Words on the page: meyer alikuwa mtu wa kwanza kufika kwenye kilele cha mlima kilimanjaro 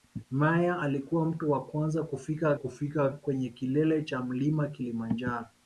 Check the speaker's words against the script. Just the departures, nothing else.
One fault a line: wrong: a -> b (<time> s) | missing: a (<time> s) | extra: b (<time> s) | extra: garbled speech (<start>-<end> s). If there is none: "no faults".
extra: kufika (2.5 s)